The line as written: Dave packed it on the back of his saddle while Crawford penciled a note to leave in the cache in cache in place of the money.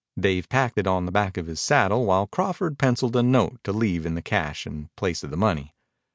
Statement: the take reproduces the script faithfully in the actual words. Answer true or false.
false